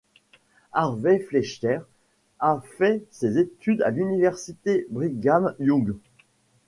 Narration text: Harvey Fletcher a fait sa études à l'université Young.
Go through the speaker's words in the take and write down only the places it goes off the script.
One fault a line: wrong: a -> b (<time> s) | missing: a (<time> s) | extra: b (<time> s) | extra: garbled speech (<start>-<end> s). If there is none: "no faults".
wrong: sa -> ses (3.1 s)
extra: Brigham (4.9 s)